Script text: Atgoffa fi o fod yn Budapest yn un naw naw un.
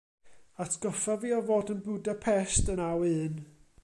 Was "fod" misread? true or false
false